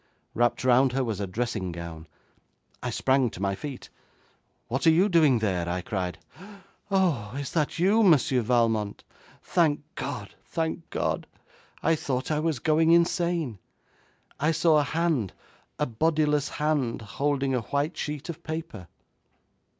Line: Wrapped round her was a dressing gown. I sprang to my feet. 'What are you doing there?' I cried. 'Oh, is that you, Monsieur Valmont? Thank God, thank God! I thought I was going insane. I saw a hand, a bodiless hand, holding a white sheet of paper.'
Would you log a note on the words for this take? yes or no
no